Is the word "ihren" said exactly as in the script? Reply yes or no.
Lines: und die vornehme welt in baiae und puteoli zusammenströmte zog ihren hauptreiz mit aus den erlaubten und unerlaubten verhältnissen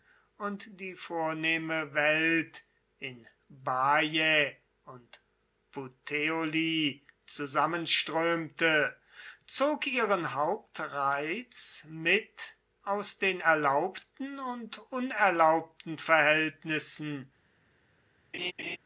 yes